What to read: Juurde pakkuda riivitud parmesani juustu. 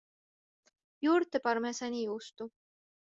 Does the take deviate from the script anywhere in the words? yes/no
yes